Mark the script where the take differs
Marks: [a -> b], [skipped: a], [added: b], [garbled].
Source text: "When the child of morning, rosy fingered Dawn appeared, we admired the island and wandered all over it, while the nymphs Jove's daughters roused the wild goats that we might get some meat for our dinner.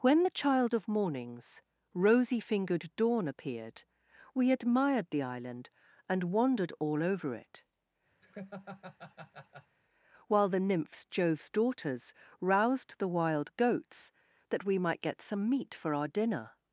"When the child of [morning, -> mornings] rosy fingered Dawn appeared, we admired the island and wandered all over it, while the nymphs Jove's daughters roused the wild goats that we might get some meat for our dinner.